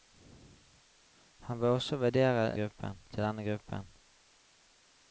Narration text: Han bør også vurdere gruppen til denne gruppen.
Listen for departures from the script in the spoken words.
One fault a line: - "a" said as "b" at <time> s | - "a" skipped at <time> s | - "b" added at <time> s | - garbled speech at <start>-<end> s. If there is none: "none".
none